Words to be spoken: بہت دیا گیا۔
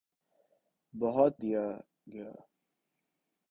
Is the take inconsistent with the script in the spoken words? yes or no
no